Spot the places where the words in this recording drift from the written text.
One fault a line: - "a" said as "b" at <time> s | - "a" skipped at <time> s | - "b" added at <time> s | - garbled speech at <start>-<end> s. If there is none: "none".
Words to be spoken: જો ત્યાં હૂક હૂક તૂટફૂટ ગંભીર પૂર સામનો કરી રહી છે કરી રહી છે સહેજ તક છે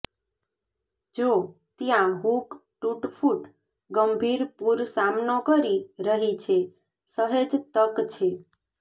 - "હૂક" skipped at 2.5 s
- "કરી રહી છે" skipped at 6.6 s